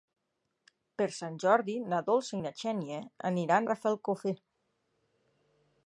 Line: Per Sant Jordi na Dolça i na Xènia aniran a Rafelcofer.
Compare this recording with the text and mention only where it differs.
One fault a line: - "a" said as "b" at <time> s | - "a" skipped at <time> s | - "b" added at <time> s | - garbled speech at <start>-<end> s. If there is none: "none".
- "a" skipped at 3.7 s